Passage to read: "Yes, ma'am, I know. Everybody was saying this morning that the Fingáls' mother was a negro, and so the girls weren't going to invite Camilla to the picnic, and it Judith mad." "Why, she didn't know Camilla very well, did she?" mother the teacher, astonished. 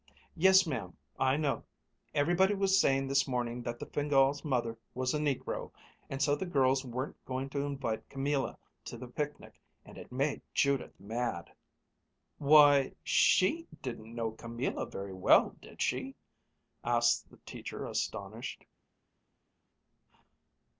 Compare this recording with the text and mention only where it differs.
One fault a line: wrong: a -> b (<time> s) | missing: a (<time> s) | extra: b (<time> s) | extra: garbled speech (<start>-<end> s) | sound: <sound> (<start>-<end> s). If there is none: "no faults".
extra: made (10.1 s)
wrong: mother -> asked (16.8 s)